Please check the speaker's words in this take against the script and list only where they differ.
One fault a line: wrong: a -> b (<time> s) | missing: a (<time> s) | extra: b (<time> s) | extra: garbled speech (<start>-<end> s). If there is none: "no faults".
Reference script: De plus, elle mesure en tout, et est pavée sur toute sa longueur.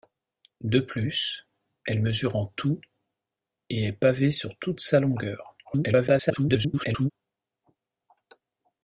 extra: garbled speech (5.6-7.1 s)